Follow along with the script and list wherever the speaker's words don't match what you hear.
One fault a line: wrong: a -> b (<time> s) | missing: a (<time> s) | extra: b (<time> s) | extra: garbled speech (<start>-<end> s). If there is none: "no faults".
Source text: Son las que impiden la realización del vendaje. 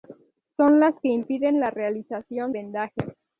missing: del (2.5 s)